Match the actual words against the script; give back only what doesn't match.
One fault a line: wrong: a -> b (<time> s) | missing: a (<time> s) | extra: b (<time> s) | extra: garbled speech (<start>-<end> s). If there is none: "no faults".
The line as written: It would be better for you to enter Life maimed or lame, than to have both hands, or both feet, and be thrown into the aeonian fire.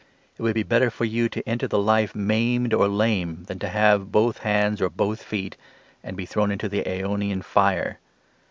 extra: the (1.7 s)